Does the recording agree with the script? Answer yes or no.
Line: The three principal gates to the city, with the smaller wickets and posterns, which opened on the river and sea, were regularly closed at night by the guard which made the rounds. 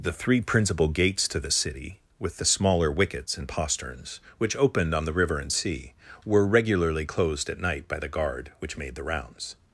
yes